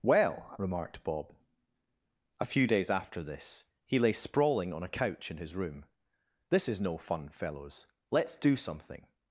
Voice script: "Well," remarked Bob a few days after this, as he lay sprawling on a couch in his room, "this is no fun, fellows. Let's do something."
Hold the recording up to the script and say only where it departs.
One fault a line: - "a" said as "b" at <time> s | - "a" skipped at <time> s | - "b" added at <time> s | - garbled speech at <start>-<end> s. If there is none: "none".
- "as" skipped at 3.6 s